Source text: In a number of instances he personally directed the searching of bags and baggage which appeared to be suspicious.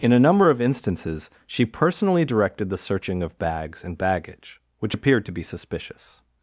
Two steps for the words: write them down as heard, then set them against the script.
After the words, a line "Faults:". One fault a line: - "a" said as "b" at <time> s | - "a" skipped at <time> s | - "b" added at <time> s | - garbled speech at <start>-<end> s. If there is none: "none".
In a number of instances she personally directed the searching of bags and baggage which appeared to be suspicious.
Faults:
- "he" said as "she" at 1.4 s